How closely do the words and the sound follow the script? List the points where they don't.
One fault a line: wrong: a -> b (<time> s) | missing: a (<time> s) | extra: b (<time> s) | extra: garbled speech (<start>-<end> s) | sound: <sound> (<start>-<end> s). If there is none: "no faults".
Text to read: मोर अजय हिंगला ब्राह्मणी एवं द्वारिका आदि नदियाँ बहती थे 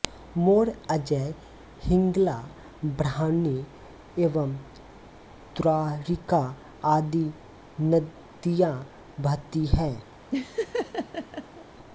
wrong: थे -> हैं (9.7 s)
sound: laugh (10.3-11.7 s)